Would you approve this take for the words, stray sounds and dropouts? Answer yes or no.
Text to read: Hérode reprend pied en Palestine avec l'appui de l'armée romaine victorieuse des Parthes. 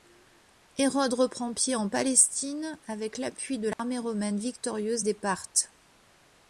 no